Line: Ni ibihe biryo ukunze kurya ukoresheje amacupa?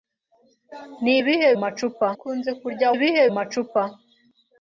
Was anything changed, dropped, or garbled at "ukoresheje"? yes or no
yes